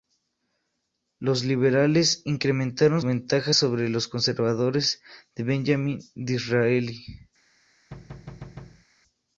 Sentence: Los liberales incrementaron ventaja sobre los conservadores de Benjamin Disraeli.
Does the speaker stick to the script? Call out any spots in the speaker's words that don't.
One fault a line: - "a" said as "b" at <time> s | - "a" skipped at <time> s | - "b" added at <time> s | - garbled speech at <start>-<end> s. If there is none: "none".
none